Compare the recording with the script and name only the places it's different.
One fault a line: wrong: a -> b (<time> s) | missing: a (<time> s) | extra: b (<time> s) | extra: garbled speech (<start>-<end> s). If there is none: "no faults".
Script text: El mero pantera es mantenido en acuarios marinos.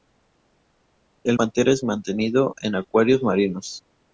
missing: mero (1.4 s)